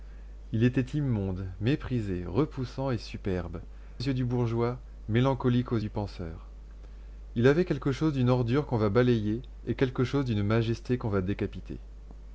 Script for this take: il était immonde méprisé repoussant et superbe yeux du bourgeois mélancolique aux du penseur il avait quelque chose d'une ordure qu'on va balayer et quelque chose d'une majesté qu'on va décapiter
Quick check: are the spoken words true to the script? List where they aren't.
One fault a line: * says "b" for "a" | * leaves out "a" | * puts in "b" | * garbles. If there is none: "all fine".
all fine